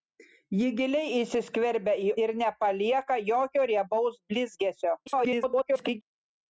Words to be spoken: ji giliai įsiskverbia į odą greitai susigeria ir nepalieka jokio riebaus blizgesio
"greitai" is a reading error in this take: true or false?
true